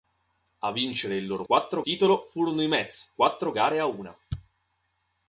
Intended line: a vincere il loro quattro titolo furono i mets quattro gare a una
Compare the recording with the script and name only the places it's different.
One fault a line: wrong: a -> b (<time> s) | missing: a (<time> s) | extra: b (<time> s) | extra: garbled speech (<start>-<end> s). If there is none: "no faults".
no faults